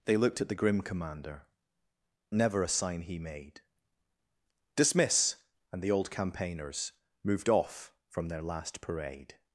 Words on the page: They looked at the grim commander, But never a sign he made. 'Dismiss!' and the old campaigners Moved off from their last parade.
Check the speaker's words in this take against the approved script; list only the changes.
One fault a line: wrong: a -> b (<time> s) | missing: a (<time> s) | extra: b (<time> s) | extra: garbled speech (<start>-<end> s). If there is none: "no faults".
missing: But (1.5 s)